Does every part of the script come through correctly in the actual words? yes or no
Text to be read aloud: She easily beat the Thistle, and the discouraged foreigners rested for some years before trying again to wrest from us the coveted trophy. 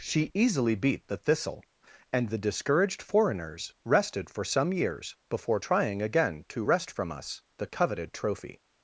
yes